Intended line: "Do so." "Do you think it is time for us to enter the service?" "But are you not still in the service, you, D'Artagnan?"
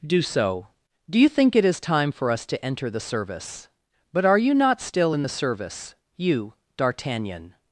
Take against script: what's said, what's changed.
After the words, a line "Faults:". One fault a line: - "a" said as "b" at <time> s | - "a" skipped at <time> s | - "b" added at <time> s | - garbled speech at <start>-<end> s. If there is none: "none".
"Do so." "Do you think it is time for us to enter the service?" "But are you not still in the service, you, D'Artagnan?"
Faults:
none